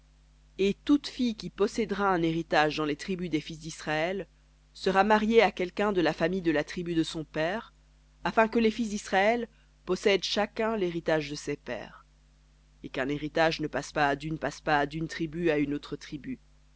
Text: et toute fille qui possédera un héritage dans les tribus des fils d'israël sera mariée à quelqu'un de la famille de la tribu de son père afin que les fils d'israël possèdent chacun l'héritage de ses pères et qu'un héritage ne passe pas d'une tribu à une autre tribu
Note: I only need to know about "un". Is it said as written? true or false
true